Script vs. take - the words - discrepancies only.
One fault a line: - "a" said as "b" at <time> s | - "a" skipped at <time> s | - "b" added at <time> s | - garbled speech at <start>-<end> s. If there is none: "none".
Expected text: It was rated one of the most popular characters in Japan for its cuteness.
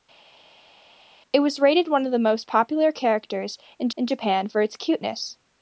- "in" added at 3.9 s